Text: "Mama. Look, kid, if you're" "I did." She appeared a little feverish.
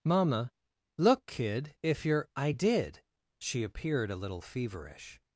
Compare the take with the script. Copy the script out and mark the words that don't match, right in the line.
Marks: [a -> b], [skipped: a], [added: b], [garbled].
"Mama. Look, kid, if you're" "I did." She appeared a little feverish.